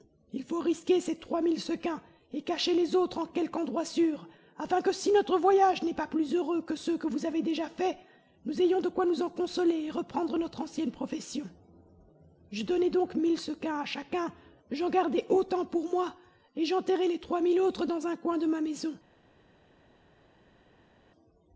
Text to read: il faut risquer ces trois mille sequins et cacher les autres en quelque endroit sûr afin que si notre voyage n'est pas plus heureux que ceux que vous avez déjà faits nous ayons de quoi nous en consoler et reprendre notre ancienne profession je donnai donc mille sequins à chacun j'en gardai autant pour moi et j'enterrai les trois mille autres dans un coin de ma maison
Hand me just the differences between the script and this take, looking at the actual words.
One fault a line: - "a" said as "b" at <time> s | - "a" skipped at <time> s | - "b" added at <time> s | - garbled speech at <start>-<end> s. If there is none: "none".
none